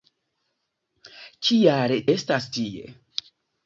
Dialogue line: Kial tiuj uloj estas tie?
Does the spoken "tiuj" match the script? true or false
false